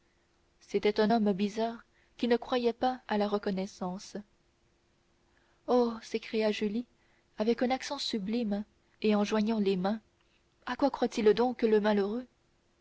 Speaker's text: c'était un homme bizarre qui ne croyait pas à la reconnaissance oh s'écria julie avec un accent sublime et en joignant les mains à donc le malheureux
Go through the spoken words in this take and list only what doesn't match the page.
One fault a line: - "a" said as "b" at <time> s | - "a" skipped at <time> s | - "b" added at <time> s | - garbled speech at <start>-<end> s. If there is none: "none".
- "quoi croit il" added at 10.7 s